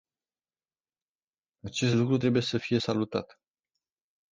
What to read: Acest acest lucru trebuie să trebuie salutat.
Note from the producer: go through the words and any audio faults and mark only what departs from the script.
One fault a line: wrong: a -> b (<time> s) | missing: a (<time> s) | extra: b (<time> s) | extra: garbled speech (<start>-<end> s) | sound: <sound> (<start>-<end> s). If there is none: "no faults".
missing: acest (2.0 s)
wrong: trebuie -> fie (2.6 s)